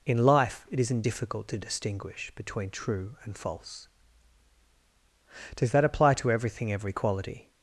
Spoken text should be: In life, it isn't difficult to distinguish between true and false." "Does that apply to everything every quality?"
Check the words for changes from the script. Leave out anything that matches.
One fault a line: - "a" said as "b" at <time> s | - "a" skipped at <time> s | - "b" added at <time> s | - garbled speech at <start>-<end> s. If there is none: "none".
none